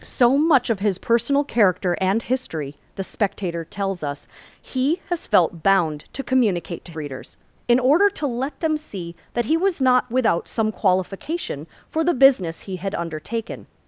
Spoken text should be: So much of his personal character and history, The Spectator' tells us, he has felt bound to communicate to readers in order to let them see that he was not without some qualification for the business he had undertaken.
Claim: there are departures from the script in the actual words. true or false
false